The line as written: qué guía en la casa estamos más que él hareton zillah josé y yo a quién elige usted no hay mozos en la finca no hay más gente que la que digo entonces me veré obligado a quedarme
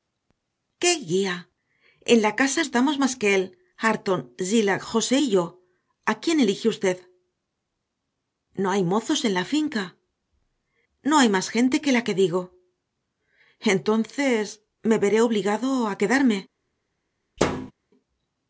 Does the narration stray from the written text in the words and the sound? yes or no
yes